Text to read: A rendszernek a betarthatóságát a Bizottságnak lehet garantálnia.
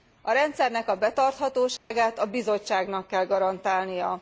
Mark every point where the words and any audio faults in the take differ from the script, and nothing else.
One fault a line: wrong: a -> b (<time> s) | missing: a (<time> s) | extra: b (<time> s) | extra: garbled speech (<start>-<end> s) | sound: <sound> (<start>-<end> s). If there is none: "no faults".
sound: dropout (1.8-1.9 s)
wrong: lehet -> kell (3.1 s)